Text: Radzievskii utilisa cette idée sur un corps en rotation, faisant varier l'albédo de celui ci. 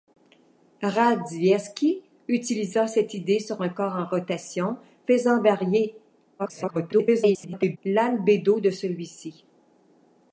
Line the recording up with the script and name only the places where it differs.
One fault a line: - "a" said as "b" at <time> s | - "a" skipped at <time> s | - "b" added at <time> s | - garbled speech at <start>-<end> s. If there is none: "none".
- garbled speech at 6.4-7.8 s